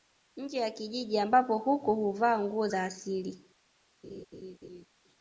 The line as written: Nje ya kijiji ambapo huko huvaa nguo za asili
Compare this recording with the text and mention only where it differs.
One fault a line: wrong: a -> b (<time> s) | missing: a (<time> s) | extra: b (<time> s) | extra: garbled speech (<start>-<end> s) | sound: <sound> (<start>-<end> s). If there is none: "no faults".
sound: laugh (4.0-4.9 s)